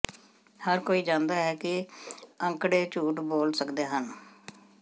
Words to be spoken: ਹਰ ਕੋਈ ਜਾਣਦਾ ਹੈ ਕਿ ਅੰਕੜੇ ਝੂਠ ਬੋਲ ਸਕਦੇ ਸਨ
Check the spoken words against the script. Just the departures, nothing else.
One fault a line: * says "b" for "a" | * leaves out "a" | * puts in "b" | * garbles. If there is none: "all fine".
* says "ਹਨ" for "ਸਨ"